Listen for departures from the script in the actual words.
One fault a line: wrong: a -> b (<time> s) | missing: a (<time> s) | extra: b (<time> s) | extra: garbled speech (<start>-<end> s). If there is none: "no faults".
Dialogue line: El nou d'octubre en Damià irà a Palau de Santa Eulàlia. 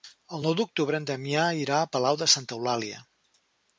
no faults